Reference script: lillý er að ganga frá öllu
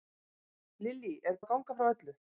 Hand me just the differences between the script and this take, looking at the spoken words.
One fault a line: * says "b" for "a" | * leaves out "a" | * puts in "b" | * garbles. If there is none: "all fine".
all fine